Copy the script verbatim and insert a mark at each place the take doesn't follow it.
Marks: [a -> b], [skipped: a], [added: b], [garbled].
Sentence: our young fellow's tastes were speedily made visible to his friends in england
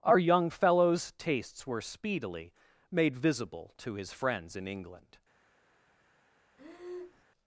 our young fellow's tastes were speedily made visible to his friends in england